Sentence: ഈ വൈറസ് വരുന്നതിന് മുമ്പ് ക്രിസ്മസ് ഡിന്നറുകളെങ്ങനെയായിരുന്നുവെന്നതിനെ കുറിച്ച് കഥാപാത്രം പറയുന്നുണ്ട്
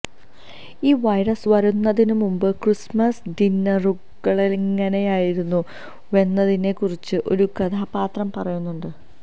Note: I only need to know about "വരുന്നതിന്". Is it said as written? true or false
true